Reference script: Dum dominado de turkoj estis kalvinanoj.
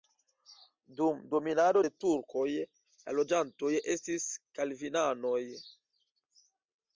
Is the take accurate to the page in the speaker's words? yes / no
no